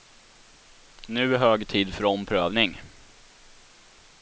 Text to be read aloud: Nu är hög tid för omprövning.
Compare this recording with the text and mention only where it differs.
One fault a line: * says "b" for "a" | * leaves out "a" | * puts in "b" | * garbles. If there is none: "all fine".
all fine